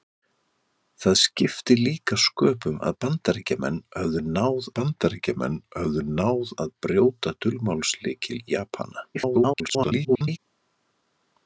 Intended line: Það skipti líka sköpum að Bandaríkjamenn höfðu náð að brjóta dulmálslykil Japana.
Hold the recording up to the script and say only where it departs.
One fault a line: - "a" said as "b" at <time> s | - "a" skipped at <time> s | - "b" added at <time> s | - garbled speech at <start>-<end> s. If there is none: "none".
- "Bandaríkjamenn höfðu náð" added at 4.8 s
- garbled speech at 9.1-10.4 s